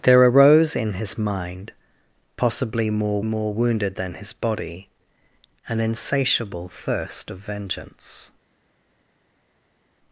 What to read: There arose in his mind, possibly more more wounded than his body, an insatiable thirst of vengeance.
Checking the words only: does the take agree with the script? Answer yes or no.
yes